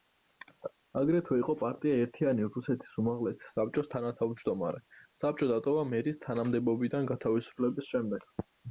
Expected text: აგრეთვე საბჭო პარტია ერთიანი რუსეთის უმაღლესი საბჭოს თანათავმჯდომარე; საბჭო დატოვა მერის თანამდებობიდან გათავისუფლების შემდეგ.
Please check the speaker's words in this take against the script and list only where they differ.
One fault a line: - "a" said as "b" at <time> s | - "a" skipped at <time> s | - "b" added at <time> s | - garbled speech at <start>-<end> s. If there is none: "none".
- "საბჭო" said as "იყო" at 1.4 s